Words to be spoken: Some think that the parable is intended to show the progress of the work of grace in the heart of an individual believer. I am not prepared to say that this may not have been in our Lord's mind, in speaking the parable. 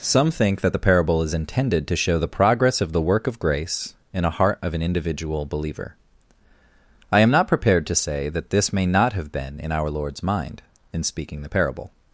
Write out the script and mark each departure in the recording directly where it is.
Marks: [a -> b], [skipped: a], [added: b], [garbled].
Some think that the parable is intended to show the progress of the work of grace in [the -> a] heart of an individual believer. I am not prepared to say that this may not have been in our Lord's mind, in speaking the parable.